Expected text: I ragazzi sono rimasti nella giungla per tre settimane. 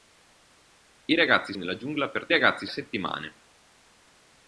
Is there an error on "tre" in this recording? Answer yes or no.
yes